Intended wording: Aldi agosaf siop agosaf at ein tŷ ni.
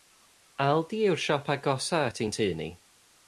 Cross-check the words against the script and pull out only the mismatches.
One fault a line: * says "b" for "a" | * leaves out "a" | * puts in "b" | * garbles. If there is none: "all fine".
* says "yw'r" for "agosaf"